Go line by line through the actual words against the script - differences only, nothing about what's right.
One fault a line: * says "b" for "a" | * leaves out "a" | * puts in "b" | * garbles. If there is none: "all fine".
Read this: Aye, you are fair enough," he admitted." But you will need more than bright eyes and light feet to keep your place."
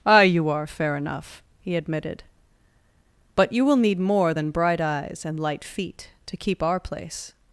* says "our" for "your"